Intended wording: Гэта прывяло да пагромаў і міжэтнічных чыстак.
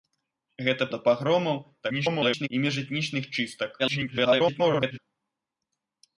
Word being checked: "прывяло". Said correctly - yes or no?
no